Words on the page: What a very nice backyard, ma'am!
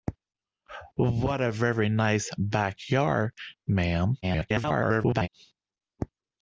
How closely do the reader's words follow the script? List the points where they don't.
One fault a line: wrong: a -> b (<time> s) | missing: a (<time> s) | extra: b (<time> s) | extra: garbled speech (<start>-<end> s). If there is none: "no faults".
extra: garbled speech (4.2-5.3 s)